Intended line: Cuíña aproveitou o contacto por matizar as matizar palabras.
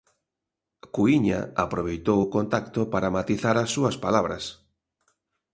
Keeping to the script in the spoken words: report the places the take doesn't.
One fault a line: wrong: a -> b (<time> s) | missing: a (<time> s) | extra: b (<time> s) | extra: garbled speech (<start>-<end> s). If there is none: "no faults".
wrong: por -> para (2.9 s)
wrong: matizar -> súas (3.7 s)